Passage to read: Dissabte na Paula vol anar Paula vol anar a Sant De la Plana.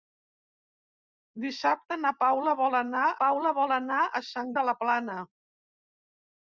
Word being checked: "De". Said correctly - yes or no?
yes